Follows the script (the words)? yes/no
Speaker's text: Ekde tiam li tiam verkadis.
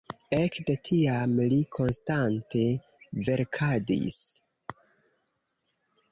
no